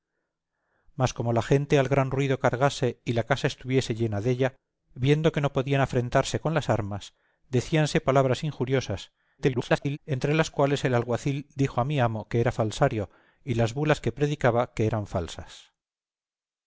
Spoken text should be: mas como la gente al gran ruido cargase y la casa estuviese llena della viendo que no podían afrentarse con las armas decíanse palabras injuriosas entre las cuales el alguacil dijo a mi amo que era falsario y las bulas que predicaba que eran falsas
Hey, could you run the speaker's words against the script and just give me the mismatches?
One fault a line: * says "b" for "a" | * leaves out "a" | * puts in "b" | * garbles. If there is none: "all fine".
* garbles